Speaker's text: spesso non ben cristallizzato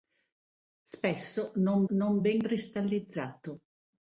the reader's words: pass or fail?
fail